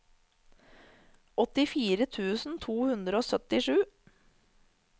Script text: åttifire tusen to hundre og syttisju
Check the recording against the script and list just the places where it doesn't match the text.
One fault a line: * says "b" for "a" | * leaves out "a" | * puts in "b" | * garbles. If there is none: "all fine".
all fine